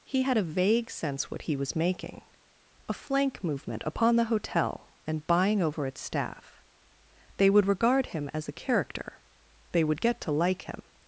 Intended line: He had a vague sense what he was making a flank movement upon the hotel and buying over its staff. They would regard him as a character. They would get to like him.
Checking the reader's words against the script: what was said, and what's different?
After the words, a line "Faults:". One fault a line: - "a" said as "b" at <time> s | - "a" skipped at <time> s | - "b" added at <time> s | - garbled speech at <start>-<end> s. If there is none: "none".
He had a vague sense what he was making a flank movement upon the hotel and buying over its staff. They would regard him as a character. They would get to like him.
Faults:
none